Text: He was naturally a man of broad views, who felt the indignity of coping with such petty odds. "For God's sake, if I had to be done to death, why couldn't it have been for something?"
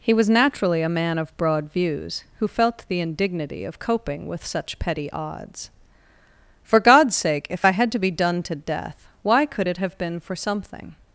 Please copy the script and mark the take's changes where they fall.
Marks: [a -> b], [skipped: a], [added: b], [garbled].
He was naturally a man of broad views, who felt the indignity of coping with such petty odds. "For God's sake, if I had to be done to death, why [couldn't -> could] it have been for something?"